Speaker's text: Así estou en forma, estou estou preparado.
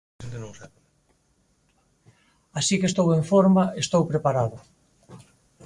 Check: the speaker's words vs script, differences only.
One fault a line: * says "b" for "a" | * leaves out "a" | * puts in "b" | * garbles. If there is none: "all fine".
* puts in "que"
* leaves out "estou"